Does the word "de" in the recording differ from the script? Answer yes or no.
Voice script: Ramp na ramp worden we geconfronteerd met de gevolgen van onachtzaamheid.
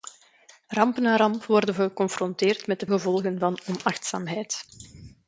no